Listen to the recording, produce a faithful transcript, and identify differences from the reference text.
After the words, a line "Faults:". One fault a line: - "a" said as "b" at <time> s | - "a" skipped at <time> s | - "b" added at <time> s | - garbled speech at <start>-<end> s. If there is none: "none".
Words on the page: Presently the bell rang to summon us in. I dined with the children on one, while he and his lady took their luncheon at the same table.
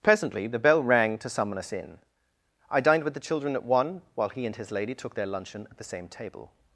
Presently the bell rang to summon us in. I dined with the children at one, while he and his lady took their luncheon at the same table.
Faults:
- "on" said as "at" at 3.5 s